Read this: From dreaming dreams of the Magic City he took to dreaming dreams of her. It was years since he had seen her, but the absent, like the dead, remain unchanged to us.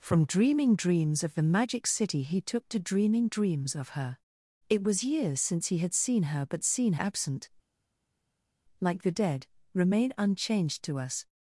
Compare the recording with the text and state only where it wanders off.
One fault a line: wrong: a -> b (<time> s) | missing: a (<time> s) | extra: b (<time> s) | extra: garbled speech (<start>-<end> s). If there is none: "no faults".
wrong: the -> seen (6.6 s)